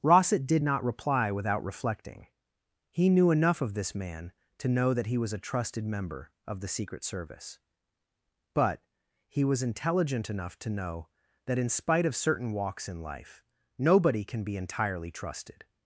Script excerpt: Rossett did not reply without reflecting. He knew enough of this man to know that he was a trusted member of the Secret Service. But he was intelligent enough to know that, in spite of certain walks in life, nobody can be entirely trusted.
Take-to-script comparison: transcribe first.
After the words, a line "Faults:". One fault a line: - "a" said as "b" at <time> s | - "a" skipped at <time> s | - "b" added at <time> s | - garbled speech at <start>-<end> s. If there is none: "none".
Rossett did not reply without reflecting. He knew enough of this man to know that he was a trusted member of the Secret Service. But he was intelligent enough to know that, in spite of certain walks in life, nobody can be entirely trusted.
Faults:
none